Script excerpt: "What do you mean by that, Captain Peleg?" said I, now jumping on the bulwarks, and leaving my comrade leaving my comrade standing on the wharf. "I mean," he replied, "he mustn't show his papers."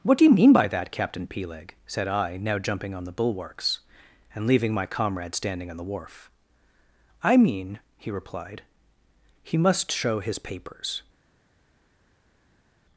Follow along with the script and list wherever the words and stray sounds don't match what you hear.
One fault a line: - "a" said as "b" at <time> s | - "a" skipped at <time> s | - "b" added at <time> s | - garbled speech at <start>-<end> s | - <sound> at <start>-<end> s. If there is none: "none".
- "leaving my comrade" skipped at 5.3 s
- "mustn't" said as "must" at 9.6 s